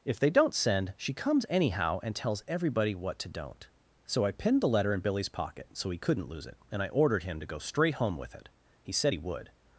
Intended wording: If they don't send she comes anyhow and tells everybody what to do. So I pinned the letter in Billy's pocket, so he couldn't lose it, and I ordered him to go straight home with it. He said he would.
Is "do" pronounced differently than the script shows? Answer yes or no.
yes